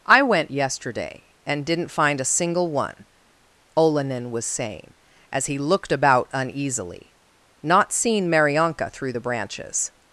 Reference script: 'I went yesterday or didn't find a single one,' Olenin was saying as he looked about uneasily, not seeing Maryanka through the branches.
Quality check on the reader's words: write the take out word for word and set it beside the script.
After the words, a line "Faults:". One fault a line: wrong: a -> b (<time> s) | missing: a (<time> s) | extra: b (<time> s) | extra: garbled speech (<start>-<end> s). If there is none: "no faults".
'I went yesterday and didn't find a single one,' Olenin was saying as he looked about uneasily, not seeing Maryanka through the branches.
Faults:
wrong: or -> and (1.4 s)